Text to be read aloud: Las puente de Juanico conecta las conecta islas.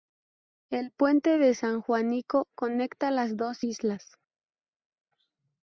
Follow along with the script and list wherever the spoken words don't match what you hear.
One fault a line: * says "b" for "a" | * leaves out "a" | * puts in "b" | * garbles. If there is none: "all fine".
* says "El" for "Las"
* puts in "San"
* says "dos" for "conecta"